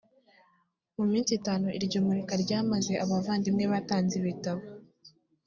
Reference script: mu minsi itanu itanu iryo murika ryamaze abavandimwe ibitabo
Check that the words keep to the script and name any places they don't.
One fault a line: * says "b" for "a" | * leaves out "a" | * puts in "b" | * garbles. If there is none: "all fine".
* leaves out "itanu"
* puts in "batanze"